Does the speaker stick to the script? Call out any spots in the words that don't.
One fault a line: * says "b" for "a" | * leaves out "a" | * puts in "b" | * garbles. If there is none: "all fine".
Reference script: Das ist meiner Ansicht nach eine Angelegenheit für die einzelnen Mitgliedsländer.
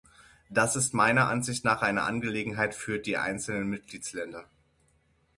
all fine